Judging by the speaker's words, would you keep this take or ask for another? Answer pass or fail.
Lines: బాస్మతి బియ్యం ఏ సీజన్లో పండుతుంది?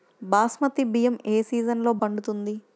pass